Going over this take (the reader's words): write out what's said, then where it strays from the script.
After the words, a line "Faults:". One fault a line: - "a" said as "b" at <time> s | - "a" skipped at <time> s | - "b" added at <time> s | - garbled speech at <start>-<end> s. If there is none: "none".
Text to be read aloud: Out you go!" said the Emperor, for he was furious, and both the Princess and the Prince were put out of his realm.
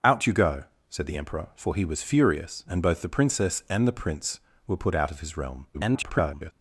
Out you go!" said the Emperor, for he was furious, and both the Princess and the Prince were put out of his realm. [garbled]
Faults:
- garbled speech at 5.7-6.5 s